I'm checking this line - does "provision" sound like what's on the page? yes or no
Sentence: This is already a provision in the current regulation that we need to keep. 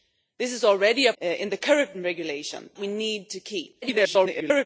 no